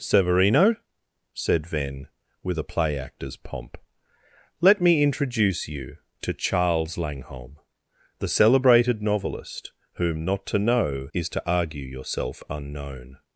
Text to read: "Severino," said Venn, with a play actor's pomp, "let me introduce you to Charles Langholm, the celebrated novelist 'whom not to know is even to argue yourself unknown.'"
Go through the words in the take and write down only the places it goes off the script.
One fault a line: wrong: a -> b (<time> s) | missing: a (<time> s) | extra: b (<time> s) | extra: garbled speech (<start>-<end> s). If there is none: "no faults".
missing: even (11.3 s)